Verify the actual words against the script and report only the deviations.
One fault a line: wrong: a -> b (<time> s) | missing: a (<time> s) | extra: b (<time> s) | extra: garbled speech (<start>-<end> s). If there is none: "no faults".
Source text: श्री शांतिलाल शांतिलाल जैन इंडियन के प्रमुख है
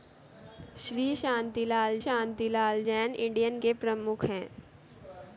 no faults